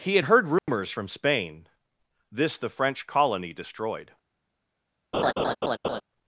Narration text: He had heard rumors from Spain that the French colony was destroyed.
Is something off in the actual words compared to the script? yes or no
yes